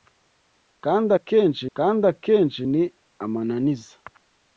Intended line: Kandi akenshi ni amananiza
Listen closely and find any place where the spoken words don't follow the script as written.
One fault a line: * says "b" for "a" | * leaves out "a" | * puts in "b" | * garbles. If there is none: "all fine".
* puts in "kandi akenshi"